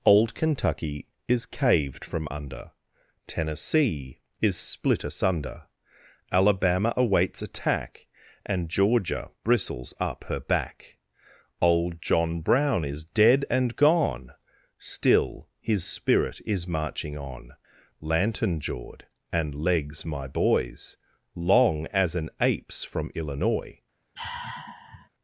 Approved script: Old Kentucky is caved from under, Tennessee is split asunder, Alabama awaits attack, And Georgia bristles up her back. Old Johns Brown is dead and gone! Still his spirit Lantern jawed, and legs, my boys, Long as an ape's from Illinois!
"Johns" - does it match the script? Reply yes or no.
no